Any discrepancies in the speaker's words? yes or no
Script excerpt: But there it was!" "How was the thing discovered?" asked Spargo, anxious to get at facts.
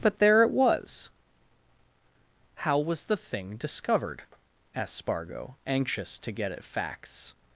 no